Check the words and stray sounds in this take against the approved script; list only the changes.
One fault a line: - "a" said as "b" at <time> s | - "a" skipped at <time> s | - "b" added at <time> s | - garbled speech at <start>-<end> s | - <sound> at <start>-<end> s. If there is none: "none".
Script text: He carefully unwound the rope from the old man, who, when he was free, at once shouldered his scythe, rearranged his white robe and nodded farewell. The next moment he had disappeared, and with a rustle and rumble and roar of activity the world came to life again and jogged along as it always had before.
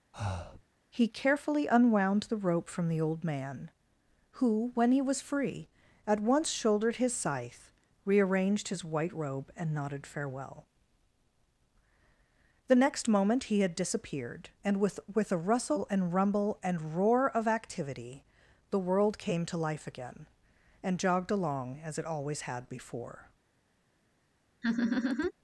- breath at 0.1-0.6 s
- "with" added at 15.1 s
- laugh at 24.6-25.3 s